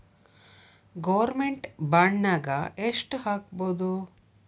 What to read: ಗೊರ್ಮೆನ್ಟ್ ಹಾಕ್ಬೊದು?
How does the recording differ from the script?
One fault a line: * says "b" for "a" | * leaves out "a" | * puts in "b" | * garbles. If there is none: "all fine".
* puts in "ಬಾಂಡ್ನಾಗ್ ಯೆಷ್ಟ್"